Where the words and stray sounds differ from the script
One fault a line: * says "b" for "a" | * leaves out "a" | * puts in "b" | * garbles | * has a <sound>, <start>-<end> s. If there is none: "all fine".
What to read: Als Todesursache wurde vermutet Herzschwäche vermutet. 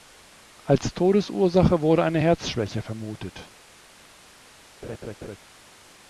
* says "eine" for "vermutet"
* has a laugh, 4.8-5.4 s